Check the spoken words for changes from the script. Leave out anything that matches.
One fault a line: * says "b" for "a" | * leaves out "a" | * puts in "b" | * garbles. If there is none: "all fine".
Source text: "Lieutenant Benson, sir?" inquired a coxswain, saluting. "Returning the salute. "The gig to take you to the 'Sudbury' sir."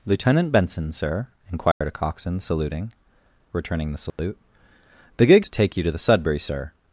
all fine